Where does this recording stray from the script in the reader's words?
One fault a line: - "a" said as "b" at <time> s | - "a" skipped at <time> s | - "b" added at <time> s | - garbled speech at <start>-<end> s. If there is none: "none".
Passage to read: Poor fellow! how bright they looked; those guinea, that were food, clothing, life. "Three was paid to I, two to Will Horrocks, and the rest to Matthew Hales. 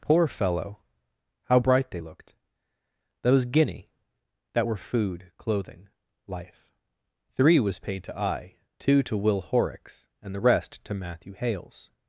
none